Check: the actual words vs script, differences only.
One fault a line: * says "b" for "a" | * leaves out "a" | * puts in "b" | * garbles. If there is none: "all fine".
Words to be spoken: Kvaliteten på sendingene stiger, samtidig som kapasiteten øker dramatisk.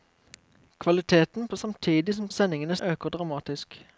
* leaves out "sendingene stiger"
* says "sendingene" for "kapasiteten"